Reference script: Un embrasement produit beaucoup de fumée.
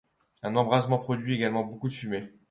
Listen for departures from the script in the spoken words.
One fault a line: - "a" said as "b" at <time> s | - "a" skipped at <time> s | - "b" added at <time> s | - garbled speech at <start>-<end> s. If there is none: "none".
- "également" added at 1.4 s